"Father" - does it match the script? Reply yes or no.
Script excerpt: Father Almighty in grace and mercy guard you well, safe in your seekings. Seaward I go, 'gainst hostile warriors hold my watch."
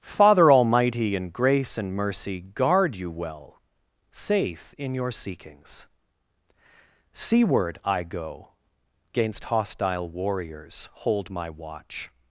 yes